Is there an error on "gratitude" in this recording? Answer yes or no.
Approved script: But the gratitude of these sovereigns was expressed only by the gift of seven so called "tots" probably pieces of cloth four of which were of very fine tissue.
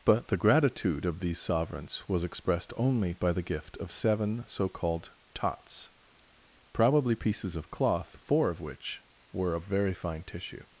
no